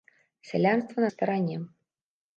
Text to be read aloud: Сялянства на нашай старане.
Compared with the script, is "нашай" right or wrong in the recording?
wrong